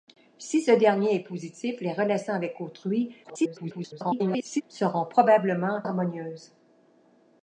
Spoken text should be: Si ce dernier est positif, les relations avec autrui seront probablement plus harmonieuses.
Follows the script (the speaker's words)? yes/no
no